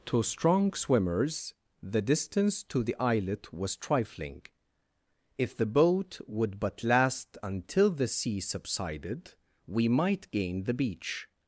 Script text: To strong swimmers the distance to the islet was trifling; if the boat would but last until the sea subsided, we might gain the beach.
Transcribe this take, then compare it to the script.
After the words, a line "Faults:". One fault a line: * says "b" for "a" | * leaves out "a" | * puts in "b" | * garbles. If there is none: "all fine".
To strong swimmers the distance to the islet was trifling; if the boat would but last until the sea subsided, we might gain the beach.
Faults:
all fine